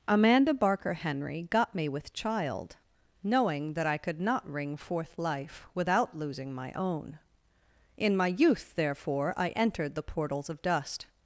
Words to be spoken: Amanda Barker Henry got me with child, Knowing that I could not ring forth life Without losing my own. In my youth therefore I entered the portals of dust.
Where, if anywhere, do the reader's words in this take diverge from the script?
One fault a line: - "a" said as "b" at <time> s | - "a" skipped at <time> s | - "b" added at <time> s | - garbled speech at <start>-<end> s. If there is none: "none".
none